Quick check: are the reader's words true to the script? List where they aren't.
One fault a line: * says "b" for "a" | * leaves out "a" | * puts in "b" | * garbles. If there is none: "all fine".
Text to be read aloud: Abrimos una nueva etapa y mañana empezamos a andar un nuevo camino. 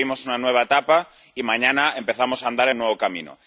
all fine